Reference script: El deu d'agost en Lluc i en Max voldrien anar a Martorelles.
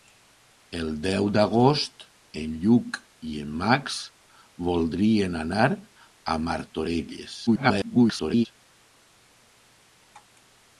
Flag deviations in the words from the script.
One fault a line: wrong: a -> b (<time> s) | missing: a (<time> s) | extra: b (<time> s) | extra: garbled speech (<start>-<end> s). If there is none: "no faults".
extra: garbled speech (7.5-8.5 s)